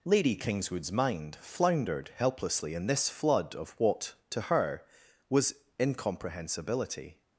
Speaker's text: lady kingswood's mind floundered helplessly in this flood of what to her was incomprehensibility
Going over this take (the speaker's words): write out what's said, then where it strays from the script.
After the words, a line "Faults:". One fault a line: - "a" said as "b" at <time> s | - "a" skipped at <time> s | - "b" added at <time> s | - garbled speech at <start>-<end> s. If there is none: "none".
lady kingswood's mind floundered helplessly in this flood of what to her was incomprehensibility
Faults:
none